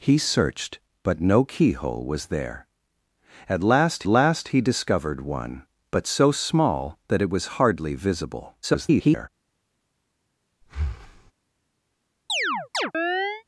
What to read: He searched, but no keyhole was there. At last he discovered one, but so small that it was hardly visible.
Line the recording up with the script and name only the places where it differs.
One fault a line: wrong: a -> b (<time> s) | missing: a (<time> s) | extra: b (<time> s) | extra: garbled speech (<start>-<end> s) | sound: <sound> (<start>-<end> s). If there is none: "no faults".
extra: last (4.1 s)
extra: garbled speech (8.6-9.3 s)
sound: breath (10.6-11.3 s)
sound: chirp (12.3-13.4 s)